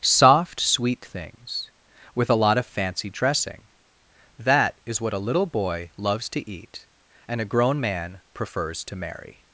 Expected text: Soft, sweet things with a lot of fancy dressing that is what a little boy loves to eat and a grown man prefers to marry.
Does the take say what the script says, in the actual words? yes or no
yes